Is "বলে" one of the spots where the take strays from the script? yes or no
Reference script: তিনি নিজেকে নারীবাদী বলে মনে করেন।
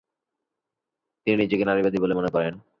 no